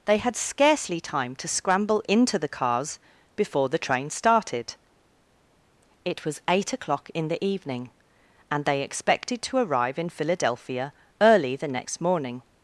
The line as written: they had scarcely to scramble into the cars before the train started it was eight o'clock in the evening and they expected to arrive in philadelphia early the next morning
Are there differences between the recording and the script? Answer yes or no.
yes